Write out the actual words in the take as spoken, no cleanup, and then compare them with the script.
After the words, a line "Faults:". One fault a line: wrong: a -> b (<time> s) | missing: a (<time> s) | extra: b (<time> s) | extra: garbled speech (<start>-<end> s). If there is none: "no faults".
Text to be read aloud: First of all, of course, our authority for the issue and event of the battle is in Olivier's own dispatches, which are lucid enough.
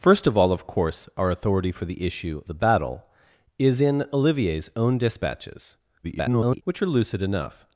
First of all, of course, our authority for the issue the battle is in Olivier's own dispatches, [garbled] which are lucid enough.
Faults:
missing: and event of (2.4 s)
extra: garbled speech (6.0-6.6 s)